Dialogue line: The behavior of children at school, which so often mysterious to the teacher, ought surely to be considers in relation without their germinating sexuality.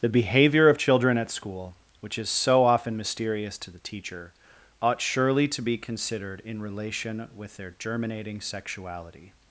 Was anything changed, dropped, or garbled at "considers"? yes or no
yes